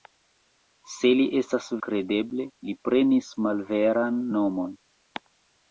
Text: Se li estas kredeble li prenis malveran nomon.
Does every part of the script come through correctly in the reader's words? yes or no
yes